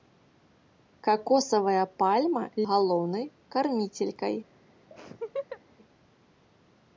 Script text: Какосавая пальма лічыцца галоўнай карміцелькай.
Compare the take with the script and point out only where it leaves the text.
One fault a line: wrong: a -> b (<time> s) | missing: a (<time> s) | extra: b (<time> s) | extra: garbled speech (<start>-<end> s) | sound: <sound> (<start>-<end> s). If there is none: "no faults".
missing: лічыцца (2.4 s)
sound: laugh (4.9-5.6 s)